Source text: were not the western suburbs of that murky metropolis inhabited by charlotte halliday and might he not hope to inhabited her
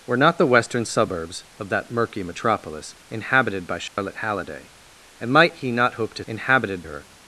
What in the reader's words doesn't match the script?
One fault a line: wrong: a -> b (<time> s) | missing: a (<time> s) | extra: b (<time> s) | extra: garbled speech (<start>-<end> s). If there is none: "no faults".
no faults